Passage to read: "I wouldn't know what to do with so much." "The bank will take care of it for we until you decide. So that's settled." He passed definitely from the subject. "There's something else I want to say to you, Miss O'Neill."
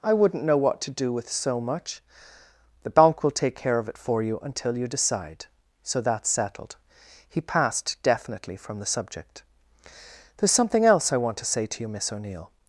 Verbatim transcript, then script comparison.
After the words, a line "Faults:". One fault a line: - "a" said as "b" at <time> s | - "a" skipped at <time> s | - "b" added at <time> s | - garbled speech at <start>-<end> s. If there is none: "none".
"I wouldn't know what to do with so much." "The bank will take care of it for you until you decide. So that's settled." He passed definitely from the subject. "There's something else I want to say to you, Miss O'Neill."
Faults:
- "we" said as "you" at 4.2 s